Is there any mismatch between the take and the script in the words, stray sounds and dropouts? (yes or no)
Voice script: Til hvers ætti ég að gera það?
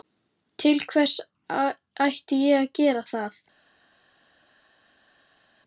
no